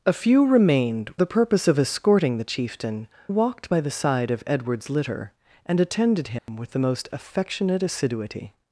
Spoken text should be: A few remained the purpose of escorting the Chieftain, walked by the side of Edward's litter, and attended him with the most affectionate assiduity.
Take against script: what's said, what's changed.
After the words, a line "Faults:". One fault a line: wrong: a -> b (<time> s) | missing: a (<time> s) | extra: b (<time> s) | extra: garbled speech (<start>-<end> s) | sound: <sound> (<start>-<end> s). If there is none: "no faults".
A few remained the purpose of escorting the Chieftain, walked by the side of Edward's litter, and attended him with the most affectionate assiduity.
Faults:
sound: dropout (6.4-6.5 s)